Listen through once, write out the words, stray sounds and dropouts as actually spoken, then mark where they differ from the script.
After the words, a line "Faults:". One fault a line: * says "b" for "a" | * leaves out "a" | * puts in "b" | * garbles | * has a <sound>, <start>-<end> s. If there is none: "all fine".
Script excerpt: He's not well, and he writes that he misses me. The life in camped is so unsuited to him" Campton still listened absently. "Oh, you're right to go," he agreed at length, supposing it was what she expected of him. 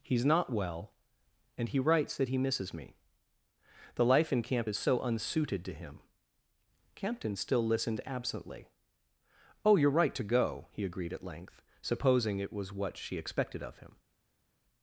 He's not well, and he writes that he misses me. The life in camp is so unsuited to him" Campton still listened absently. "Oh, you're right to go," he agreed at length, supposing it was what she expected of him.
Faults:
* says "camp" for "camped"